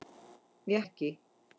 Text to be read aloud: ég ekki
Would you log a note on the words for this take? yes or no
no